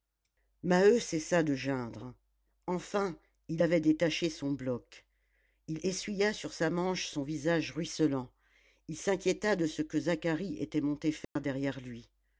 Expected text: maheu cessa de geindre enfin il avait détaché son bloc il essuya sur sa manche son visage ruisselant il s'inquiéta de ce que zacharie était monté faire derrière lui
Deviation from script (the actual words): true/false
false